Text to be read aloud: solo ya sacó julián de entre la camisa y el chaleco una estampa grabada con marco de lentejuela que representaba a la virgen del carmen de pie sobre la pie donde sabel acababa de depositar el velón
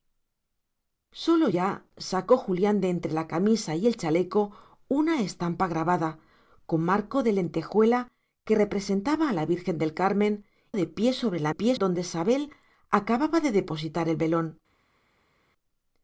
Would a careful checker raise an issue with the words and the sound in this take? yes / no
no